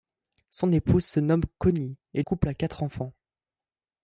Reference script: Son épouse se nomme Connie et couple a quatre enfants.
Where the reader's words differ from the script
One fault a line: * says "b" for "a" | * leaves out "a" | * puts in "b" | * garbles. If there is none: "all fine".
all fine